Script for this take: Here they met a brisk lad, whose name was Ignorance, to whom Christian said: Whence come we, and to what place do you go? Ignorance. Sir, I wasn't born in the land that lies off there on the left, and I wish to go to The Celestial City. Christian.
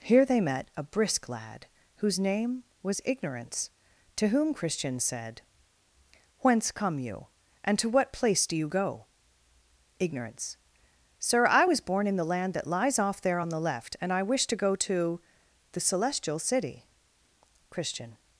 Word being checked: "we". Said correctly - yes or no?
no